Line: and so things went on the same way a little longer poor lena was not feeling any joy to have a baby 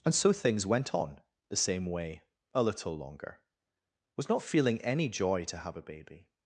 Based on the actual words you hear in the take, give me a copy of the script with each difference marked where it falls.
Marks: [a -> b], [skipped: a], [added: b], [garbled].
and so things went on the same way a little longer [skipped: poor lena] was not feeling any joy to have a baby